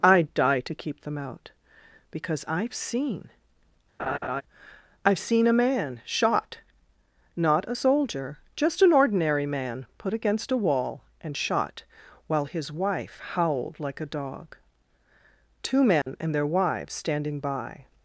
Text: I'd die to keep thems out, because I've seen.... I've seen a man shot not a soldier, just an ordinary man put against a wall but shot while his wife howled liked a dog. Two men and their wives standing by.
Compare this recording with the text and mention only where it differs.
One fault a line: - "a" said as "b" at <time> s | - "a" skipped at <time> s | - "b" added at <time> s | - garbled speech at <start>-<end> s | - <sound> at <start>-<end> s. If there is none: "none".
- "thems" said as "them" at 1.0 s
- laugh at 4.0-4.4 s
- "but" said as "and" at 11.2 s
- "liked" said as "like" at 13.8 s
- dropout at 16.0-16.1 s